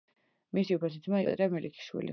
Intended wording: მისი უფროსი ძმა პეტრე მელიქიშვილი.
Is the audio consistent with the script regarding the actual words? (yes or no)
yes